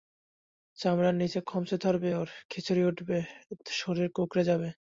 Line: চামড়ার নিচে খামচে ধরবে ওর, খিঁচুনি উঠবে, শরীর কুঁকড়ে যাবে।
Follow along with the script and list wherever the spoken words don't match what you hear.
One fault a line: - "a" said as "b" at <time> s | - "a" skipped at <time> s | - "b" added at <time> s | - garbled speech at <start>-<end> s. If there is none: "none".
none